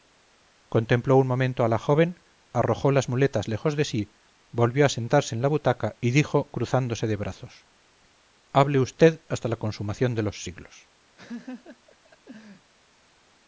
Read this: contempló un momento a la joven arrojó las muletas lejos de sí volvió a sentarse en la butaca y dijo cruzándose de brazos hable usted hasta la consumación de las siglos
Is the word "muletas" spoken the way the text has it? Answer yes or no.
yes